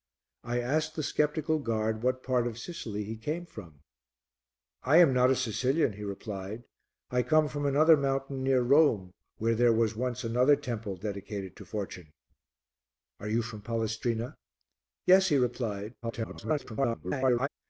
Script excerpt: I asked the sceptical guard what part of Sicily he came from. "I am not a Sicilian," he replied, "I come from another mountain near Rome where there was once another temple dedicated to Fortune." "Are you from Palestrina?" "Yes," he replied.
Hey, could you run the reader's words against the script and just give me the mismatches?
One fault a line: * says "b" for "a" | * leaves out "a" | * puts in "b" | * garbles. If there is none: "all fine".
* garbles